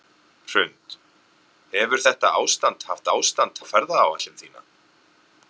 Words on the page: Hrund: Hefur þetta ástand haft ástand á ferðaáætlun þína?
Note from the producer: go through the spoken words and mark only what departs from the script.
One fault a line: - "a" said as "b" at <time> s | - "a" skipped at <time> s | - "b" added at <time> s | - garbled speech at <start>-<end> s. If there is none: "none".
none